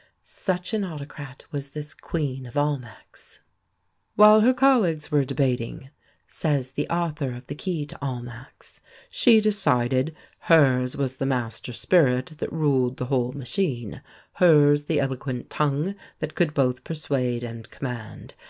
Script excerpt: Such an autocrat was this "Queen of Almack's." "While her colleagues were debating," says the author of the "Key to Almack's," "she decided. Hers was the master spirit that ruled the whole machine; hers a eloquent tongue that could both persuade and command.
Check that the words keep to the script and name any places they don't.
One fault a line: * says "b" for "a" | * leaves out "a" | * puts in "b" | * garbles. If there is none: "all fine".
* says "the" for "a"